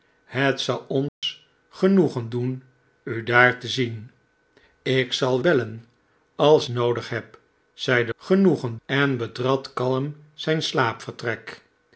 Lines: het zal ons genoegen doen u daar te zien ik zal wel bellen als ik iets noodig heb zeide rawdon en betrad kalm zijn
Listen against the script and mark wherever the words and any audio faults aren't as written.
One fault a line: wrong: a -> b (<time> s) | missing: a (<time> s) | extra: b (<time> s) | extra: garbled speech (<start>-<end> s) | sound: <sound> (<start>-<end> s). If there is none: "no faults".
sound: dropout (1.1-1.2 s)
missing: wel (5.4 s)
missing: ik iets (6.7 s)
wrong: rawdon -> genoegen (8.2 s)